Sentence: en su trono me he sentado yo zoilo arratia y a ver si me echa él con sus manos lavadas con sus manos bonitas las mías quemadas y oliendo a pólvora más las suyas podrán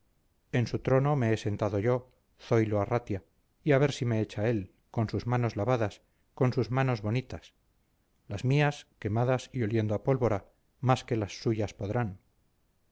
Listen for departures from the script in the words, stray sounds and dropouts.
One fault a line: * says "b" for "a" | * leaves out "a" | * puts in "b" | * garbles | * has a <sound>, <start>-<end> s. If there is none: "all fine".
* puts in "que"